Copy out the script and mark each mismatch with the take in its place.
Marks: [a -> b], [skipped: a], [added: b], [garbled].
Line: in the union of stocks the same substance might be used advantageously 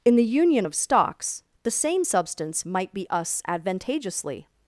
in the union of stocks the same substance might be [used -> us] advantageously